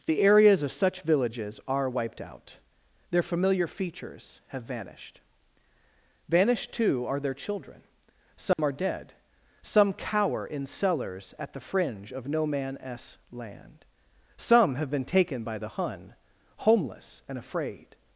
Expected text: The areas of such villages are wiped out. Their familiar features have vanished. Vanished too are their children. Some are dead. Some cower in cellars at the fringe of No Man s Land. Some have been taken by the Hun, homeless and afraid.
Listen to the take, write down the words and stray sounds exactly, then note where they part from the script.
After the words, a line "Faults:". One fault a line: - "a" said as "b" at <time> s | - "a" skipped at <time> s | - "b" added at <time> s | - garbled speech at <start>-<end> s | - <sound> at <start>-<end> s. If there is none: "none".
The areas of such villages are wiped out. Their familiar features have vanished. Vanished too are their children. Some are dead. Some cower in cellars at the fringe of No Man s Land. Some have been taken by the Hun, homeless and afraid.
Faults:
- dropout at 8.5-8.6 s